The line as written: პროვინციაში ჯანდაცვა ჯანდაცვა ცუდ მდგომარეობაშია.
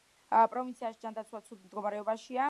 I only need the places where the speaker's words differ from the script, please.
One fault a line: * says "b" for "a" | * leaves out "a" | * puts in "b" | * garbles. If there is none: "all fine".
* leaves out "ჯანდაცვა"